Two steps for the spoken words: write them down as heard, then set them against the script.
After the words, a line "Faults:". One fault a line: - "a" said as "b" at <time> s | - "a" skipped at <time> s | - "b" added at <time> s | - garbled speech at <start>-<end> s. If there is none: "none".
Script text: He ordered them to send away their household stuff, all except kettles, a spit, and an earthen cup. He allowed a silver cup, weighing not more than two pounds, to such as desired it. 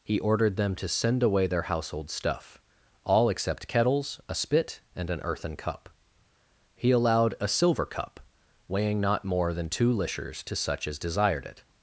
He ordered them to send away their household stuff, all except kettles, a spit, and an earthen cup. He allowed a silver cup, weighing not more than two lishers, to such as desired it.
Faults:
- "pounds" said as "lishers" at 9.9 s